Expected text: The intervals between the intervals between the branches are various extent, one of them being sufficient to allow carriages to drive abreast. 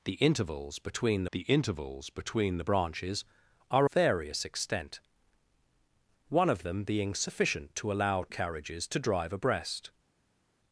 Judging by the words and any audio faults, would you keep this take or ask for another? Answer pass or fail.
pass